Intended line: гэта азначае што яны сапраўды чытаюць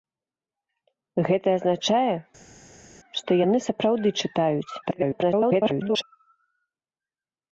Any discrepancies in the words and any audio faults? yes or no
yes